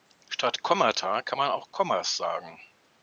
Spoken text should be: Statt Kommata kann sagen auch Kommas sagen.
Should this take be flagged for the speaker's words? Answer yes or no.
yes